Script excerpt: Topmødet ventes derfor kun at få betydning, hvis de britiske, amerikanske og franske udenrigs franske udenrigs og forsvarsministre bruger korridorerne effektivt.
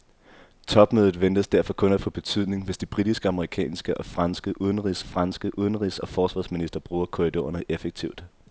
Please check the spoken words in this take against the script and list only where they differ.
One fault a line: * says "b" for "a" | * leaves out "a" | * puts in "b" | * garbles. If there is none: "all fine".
all fine